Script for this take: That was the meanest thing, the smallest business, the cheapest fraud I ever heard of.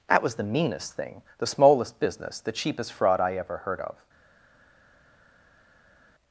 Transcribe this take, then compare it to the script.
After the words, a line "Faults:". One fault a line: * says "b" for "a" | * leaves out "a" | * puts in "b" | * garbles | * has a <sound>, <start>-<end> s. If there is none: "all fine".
That was the meanest thing, the smallest business, the cheapest fraud I ever heard of.
Faults:
all fine